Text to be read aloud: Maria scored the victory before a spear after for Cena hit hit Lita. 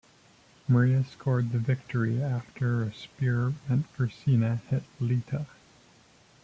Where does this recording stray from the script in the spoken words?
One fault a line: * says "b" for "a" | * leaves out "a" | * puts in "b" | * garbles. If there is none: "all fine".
* says "after" for "before"
* says "meant" for "after"
* leaves out "hit"